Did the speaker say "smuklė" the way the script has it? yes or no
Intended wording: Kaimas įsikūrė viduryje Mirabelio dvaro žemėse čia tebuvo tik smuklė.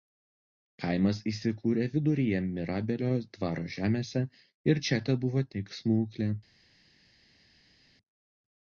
yes